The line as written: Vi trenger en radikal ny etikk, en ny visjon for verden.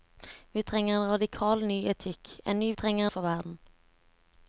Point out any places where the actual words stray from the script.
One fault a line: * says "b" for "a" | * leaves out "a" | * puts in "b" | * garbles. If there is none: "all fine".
* says "trenger" for "visjon"